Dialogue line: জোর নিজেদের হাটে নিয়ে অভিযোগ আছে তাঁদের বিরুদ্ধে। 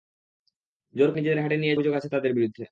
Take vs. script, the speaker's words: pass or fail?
pass